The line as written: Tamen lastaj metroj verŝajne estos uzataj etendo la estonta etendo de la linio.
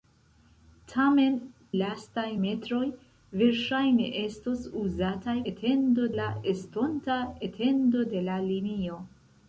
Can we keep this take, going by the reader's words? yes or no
yes